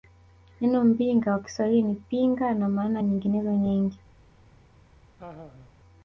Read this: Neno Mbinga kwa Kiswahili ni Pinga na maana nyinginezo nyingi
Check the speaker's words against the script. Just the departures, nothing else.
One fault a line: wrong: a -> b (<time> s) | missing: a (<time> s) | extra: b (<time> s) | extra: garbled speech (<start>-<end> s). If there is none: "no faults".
no faults